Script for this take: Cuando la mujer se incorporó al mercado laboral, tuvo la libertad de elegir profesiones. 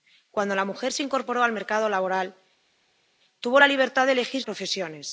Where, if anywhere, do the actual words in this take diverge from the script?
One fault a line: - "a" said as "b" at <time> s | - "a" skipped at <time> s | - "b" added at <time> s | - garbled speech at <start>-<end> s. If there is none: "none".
none